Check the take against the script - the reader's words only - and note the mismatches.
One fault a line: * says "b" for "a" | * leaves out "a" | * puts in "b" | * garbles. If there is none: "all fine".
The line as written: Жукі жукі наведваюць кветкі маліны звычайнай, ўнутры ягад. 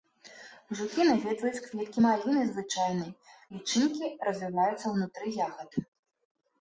* leaves out "жукі"
* puts in "лічынкі развіваюцца"